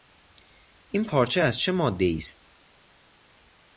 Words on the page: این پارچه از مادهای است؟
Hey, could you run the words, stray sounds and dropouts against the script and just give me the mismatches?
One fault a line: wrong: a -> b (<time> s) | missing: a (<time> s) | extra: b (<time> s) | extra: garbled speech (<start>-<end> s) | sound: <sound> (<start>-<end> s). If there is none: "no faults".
extra: چه (1.6 s)